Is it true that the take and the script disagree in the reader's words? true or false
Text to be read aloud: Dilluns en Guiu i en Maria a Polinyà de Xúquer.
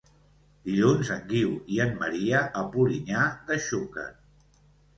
false